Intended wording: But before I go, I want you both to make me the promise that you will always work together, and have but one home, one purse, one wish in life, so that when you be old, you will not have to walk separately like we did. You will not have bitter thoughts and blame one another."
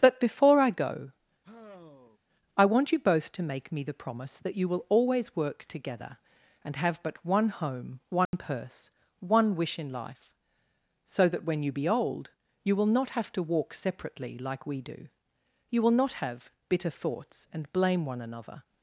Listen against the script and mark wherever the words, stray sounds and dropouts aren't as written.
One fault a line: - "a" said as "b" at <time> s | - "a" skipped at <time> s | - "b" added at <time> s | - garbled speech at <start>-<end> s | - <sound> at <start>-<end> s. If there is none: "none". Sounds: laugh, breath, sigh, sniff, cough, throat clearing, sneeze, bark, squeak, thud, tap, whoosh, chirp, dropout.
- sigh at 1.4-2.2 s
- dropout at 8.3-8.3 s
- "did" said as "do" at 14.8 s